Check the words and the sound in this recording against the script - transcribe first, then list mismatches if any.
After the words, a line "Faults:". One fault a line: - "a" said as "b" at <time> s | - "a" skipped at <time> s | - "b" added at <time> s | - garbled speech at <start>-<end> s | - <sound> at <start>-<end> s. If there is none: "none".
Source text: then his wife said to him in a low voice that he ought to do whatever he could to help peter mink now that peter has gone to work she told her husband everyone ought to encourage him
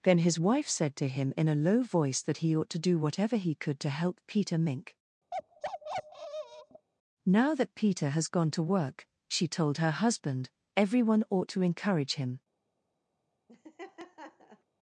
then his wife said to him in a low voice that he ought to do whatever he could to help peter mink now that peter has gone to work she told her husband everyone ought to encourage him
Faults:
- bark at 5.3-6.9 s
- laugh at 13.5-14.6 s